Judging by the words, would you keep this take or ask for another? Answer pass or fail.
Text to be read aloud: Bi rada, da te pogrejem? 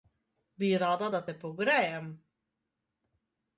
pass